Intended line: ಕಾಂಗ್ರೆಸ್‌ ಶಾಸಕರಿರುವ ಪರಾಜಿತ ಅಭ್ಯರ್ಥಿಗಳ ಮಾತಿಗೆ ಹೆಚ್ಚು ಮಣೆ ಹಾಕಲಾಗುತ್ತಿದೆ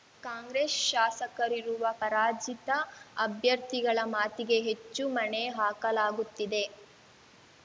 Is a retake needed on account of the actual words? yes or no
no